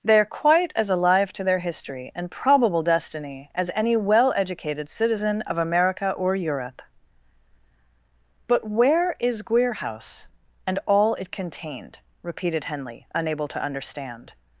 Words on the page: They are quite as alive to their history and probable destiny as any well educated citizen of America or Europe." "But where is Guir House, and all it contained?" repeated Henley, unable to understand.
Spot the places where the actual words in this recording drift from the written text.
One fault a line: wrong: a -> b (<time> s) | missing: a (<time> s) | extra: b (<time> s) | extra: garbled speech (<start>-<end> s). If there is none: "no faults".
no faults